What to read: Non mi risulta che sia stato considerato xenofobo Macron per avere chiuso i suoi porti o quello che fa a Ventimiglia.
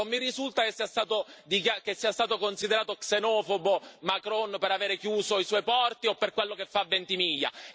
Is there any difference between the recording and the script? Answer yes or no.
yes